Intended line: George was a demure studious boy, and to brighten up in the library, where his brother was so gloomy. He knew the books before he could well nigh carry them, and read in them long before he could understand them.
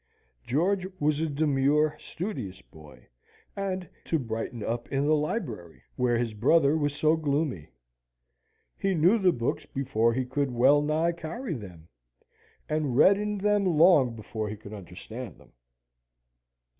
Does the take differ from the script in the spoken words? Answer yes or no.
no